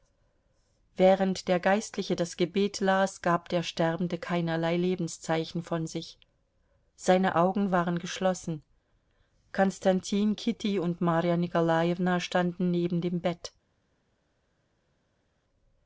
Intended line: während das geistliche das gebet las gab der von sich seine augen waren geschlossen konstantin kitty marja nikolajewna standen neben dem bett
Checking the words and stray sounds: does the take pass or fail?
fail